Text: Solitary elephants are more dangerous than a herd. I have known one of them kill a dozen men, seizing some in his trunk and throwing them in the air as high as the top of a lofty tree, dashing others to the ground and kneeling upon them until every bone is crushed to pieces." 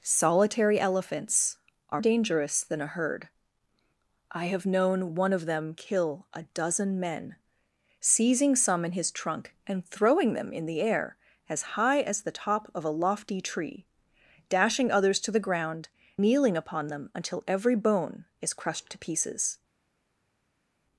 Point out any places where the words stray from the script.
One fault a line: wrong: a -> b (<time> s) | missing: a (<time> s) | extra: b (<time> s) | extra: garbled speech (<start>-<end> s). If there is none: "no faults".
missing: more (2.0 s)
missing: and (15.9 s)